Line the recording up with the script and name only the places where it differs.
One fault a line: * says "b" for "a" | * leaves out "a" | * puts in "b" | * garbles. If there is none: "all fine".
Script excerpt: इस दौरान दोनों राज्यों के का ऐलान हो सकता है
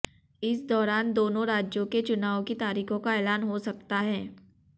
* puts in "चुनाव की तारीखों"